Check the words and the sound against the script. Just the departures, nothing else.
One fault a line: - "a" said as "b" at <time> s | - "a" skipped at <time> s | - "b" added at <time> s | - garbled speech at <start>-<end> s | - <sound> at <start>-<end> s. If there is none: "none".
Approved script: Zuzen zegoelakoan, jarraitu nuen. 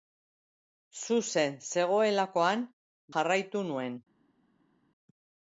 none